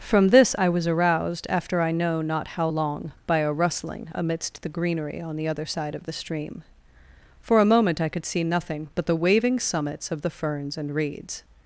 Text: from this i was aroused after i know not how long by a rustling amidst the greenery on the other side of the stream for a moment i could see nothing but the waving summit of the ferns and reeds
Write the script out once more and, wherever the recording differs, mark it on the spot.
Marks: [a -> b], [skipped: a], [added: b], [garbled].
from this i was aroused after i know not how long by a rustling amidst the greenery on the other side of the stream for a moment i could see nothing but the waving [summit -> summits] of the ferns and reeds